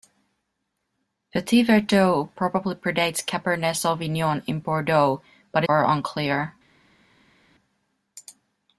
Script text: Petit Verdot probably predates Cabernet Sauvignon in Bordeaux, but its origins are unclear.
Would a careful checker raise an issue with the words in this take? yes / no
yes